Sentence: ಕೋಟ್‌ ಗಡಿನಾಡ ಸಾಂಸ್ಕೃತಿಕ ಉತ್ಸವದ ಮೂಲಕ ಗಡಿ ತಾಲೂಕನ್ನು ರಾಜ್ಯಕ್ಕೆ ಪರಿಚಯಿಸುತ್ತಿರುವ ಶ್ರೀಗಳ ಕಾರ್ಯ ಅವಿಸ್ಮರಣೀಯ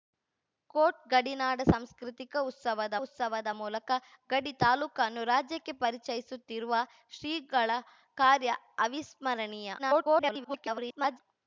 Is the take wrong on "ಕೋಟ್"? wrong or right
right